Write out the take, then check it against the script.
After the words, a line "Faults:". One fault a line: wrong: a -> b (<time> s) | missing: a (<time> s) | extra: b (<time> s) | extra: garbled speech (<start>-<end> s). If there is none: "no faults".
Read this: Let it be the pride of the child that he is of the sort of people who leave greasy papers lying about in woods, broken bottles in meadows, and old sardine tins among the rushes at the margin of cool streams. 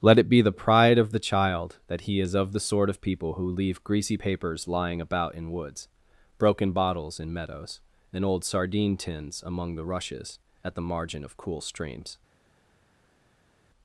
Let it be the pride of the child that he is of the sort of people who leave greasy papers lying about in woods, broken bottles in meadows, and old sardine tins among the rushes at the margin of cool streams.
Faults:
no faults